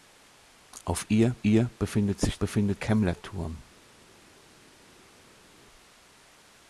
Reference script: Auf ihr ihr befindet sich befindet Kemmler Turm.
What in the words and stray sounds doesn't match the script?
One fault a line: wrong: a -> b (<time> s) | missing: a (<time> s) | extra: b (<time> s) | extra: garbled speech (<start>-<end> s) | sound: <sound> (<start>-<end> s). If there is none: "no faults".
no faults